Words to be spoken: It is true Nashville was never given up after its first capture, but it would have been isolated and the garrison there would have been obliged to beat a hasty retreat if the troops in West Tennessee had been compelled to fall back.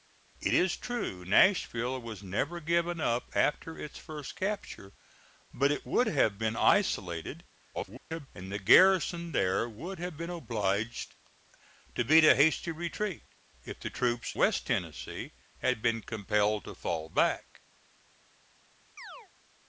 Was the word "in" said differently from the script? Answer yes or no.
yes